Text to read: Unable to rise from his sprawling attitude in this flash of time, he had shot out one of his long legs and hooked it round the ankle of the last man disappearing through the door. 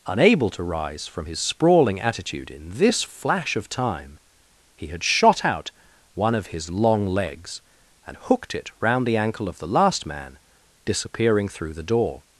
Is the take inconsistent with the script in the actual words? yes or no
no